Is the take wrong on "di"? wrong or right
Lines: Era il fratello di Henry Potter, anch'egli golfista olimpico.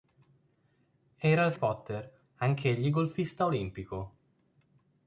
wrong